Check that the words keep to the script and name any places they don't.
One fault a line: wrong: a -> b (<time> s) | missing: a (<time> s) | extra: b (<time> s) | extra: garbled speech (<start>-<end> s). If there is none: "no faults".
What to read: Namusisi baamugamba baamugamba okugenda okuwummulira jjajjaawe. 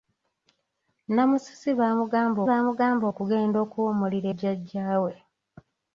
no faults